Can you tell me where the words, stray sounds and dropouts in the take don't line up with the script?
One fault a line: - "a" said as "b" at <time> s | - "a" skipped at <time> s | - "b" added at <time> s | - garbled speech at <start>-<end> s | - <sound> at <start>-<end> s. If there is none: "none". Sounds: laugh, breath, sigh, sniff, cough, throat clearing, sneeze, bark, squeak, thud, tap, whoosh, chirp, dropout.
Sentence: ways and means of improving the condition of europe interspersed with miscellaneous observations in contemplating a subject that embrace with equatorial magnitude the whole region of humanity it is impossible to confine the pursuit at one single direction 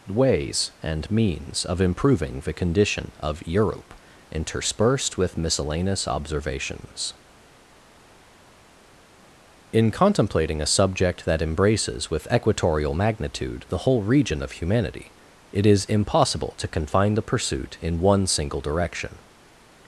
- "embrace" said as "embraces" at 11.4 s
- "at" said as "in" at 17.8 s